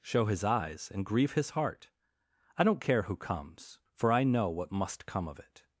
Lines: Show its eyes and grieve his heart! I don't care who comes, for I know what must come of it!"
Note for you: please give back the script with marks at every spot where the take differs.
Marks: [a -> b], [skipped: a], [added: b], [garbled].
Show [its -> his] eyes and grieve his heart! I don't care who comes, for I know what must come of it!"